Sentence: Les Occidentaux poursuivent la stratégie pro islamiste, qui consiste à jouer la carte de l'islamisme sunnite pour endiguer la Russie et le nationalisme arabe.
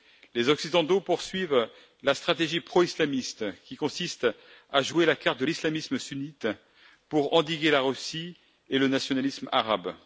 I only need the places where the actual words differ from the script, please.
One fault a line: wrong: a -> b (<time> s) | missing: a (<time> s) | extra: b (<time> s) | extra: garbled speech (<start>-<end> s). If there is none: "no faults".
no faults